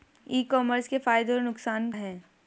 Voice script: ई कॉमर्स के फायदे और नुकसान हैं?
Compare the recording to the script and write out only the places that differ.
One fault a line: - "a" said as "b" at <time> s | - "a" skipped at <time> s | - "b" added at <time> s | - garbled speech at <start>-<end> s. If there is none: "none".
none